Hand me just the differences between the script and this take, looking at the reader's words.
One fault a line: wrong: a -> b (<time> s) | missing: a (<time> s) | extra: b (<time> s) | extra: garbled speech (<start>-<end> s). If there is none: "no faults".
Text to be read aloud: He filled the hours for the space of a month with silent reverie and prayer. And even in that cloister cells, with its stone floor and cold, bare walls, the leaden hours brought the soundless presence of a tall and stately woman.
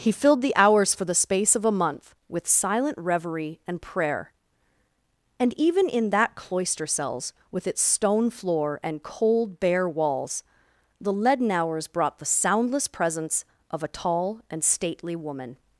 no faults